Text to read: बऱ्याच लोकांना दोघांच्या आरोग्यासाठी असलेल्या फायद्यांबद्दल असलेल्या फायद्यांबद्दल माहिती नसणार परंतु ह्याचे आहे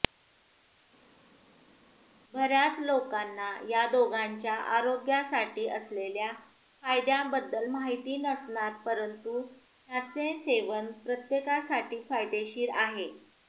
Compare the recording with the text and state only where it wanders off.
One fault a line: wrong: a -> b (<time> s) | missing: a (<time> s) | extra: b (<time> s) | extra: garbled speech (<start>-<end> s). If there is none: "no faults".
extra: या (3.7 s)
missing: असलेल्या फायद्यांबद्दल (7.7 s)
extra: सेवन प्रत्येकासाठी फायदेशीर (10.4 s)